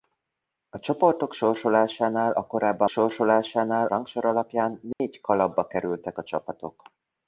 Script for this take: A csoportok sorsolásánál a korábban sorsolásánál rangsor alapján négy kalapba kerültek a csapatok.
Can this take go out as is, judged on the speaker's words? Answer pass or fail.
pass